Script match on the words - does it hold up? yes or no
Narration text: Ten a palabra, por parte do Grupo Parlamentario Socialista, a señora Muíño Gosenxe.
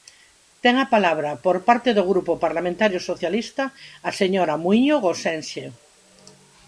yes